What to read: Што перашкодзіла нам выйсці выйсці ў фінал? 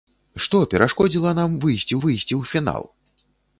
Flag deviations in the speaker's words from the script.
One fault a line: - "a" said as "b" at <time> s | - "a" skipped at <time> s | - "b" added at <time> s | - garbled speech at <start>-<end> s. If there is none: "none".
none